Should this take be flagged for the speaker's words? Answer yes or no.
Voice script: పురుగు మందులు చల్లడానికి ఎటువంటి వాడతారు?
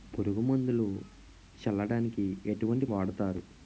no